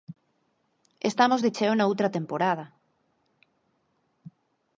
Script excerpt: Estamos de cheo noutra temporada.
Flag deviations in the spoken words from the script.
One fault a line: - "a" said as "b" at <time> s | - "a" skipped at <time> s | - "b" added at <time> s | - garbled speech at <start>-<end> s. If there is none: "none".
none